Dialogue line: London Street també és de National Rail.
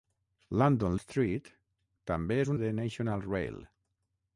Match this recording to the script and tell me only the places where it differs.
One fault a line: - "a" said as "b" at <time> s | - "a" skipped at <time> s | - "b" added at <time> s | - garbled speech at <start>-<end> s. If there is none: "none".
none